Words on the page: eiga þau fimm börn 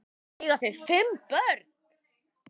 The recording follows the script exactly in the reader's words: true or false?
true